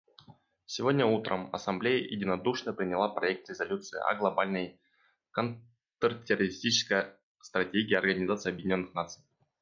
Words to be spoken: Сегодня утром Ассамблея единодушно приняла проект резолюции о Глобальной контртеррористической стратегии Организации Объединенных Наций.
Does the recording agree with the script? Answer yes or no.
yes